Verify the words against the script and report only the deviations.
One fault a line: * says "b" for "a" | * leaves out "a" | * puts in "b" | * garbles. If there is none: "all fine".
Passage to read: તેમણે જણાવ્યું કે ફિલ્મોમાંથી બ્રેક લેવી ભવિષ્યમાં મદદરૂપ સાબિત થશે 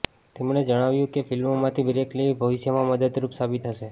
all fine